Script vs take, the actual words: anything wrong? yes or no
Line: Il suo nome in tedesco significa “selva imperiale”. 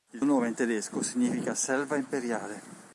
yes